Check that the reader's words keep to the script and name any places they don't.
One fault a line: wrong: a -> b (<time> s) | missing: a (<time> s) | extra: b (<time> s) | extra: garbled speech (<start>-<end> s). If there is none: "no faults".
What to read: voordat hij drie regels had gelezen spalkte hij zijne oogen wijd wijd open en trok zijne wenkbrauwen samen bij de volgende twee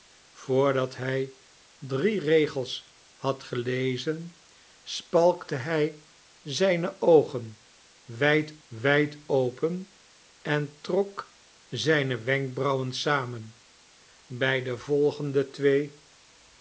no faults